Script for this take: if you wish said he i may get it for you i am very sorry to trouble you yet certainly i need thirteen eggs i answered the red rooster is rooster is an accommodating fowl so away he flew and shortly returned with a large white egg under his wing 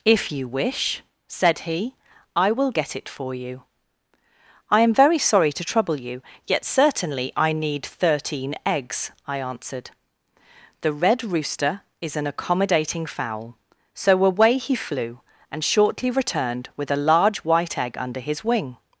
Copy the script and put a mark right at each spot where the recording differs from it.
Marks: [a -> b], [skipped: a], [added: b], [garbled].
if you wish said he i [may -> will] get it for you i am very sorry to trouble you yet certainly i need thirteen eggs i answered the red rooster is [skipped: rooster is] an accommodating fowl so away he flew and shortly returned with a large white egg under his wing